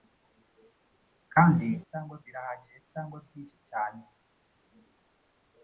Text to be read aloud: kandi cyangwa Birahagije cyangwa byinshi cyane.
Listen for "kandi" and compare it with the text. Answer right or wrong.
right